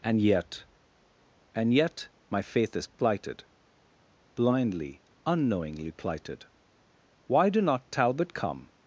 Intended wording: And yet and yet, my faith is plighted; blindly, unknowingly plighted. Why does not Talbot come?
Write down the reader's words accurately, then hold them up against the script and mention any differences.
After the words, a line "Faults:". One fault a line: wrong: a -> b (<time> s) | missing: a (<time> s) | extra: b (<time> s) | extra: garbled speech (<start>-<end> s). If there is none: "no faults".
And yet and yet, my faith is plighted; blindly, unknowingly plighted. Why do not Talbot come?
Faults:
wrong: does -> do (7.5 s)